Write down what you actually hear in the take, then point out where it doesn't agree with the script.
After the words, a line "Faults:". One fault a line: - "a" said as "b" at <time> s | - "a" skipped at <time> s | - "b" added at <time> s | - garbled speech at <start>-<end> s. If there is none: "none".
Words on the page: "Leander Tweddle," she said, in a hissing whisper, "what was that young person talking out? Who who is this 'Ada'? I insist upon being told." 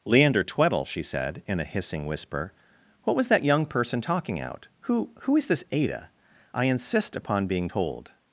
"Leander Tweddle," she said, in a hissing whisper, "what was that young person talking out? Who who is this 'Ada'? I insist upon being told."
Faults:
none